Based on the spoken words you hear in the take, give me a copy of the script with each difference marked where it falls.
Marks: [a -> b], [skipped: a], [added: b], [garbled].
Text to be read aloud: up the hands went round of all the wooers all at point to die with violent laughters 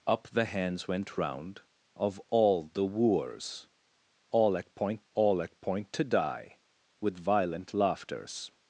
up the hands went round of all the wooers all at point [added: all at point] to die with violent laughters